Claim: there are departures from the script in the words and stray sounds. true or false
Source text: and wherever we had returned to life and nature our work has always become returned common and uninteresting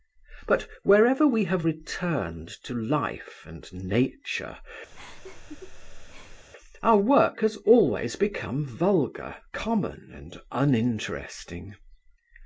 true